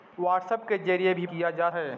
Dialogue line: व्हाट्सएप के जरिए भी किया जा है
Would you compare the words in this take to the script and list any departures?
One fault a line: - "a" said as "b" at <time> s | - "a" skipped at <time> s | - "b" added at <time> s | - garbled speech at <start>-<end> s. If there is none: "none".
none